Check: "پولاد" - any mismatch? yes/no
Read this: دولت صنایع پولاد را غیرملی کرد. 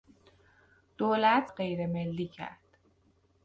yes